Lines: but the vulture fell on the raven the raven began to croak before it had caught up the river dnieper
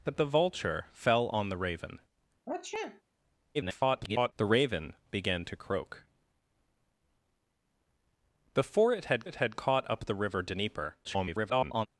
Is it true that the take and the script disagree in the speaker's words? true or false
true